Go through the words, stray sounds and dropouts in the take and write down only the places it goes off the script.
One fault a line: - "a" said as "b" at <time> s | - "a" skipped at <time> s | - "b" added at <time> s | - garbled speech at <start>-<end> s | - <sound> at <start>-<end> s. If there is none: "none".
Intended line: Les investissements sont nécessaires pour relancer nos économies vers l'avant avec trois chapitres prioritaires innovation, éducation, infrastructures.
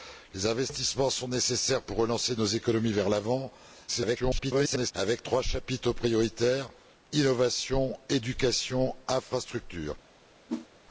- garbled speech at 3.9-4.9 s
- whoosh at 10.5-10.7 s